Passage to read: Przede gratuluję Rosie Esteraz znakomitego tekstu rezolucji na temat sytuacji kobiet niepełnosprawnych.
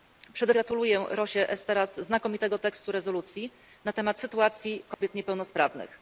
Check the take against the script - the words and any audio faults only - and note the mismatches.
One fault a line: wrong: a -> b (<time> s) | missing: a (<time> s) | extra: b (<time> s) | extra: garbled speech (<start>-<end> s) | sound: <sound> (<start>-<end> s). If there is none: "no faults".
sound: dropout (4.9-5.0 s)